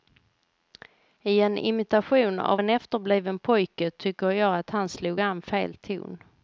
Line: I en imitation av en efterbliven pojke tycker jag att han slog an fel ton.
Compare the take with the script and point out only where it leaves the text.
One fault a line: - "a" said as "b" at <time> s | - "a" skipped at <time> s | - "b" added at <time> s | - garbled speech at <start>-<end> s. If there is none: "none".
none